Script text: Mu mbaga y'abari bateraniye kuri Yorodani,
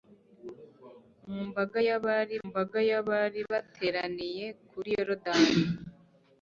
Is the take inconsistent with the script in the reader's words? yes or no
yes